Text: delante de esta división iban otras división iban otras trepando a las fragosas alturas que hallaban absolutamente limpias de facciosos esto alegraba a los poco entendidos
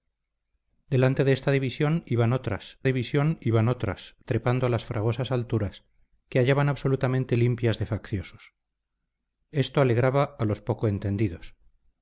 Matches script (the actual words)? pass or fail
pass